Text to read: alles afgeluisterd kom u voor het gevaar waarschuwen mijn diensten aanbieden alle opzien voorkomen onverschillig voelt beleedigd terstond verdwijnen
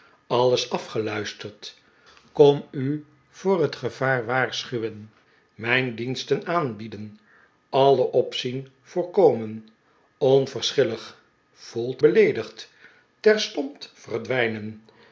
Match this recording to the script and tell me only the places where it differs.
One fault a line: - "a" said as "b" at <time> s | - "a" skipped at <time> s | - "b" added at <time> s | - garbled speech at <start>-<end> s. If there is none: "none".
none